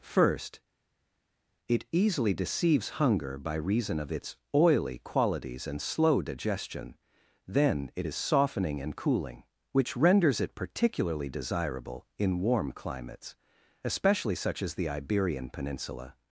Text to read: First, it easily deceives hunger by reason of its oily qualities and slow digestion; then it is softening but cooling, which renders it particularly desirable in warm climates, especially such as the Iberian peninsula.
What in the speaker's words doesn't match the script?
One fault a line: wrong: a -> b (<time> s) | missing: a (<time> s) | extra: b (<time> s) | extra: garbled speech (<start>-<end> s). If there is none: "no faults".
wrong: but -> and (8.8 s)